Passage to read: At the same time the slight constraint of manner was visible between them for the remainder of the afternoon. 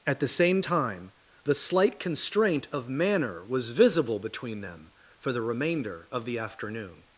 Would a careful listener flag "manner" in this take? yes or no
no